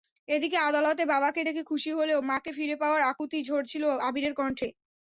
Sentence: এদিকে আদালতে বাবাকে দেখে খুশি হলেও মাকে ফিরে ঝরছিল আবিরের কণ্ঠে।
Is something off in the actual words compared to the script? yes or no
yes